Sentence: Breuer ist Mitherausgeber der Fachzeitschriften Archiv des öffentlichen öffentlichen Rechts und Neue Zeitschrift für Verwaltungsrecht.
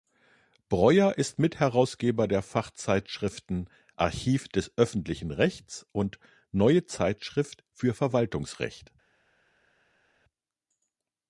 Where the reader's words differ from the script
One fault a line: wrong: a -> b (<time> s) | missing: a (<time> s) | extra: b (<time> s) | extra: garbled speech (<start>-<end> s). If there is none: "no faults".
missing: öffentlichen (5.3 s)